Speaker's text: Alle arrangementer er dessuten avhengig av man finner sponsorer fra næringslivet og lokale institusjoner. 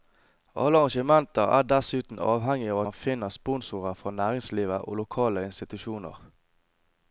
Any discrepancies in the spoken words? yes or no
no